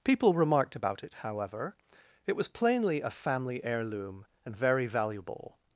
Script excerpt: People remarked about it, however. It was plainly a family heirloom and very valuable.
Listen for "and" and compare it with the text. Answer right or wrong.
right